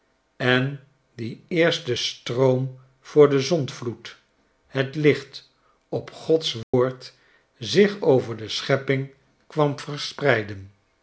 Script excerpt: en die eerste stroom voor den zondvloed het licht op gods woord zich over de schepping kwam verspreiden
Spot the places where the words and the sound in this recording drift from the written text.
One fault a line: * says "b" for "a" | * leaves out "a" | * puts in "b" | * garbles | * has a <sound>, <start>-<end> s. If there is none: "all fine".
* has a dropout, 6.6-6.7 s